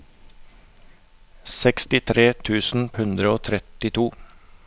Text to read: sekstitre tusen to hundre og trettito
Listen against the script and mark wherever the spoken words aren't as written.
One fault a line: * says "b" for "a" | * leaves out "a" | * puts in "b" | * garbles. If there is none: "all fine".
* leaves out "to"